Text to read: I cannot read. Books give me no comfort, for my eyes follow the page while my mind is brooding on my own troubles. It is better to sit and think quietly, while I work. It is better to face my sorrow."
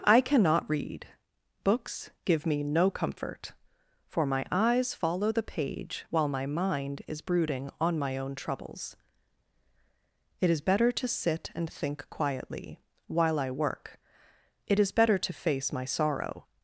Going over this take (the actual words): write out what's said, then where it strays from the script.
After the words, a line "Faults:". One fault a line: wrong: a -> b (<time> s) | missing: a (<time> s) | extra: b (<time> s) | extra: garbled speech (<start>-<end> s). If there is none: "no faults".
I cannot read. Books give me no comfort, for my eyes follow the page while my mind is brooding on my own troubles. It is better to sit and think quietly, while I work. It is better to face my sorrow."
Faults:
no faults